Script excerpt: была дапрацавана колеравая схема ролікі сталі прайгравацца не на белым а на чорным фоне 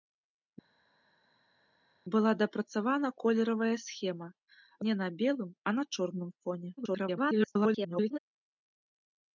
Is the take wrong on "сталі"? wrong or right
wrong